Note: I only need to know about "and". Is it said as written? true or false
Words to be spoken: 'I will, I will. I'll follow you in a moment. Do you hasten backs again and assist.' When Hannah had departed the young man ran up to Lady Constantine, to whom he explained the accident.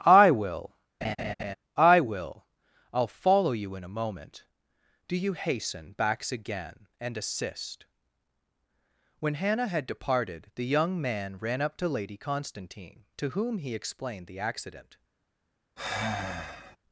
true